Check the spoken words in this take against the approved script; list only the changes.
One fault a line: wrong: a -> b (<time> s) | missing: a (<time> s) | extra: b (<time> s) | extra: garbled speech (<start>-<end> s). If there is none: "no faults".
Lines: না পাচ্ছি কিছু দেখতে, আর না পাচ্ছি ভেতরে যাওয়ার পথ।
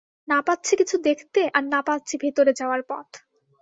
no faults